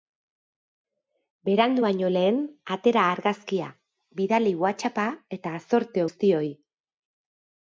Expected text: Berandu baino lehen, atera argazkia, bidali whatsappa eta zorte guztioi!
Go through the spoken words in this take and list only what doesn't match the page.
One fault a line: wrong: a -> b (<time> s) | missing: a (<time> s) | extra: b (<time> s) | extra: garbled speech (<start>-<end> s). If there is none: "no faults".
no faults